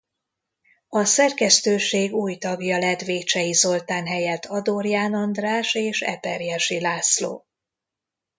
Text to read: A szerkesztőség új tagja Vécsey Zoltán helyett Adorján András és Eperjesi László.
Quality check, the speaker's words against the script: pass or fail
fail